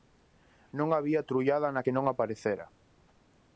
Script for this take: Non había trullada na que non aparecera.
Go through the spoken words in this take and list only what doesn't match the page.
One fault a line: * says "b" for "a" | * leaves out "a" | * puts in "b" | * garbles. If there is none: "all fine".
all fine